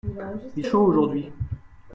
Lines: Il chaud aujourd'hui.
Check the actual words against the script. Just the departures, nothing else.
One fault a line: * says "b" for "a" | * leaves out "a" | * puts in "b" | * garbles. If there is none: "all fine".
all fine